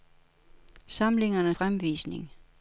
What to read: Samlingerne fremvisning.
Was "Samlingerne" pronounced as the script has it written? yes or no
yes